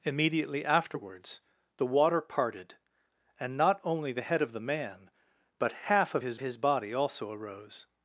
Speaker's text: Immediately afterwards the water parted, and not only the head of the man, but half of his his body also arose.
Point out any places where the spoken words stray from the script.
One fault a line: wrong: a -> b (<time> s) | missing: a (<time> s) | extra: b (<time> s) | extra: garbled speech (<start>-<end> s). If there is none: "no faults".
no faults